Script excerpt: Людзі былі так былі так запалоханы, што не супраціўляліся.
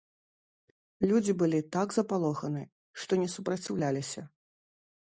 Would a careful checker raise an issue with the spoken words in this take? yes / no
yes